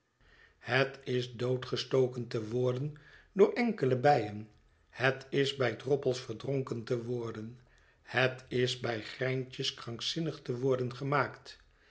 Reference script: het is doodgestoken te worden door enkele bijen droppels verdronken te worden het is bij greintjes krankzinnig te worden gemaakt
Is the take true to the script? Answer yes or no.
no